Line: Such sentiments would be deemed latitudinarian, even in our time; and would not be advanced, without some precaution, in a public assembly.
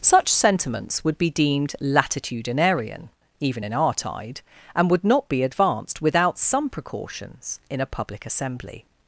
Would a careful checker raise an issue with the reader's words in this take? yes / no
yes